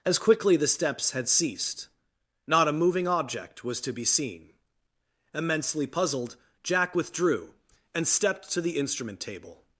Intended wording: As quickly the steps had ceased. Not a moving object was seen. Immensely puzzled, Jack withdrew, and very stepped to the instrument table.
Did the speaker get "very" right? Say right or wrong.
wrong